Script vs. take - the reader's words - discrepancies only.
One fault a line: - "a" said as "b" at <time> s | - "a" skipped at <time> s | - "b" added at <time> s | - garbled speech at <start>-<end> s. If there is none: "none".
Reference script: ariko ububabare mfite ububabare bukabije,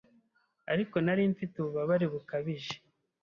- "ububabare" said as "nari" at 1.1 s